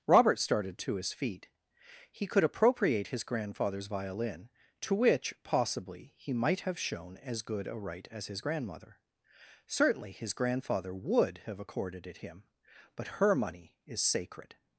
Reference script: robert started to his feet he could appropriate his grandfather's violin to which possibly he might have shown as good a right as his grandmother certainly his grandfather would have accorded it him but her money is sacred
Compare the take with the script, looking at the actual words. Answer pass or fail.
pass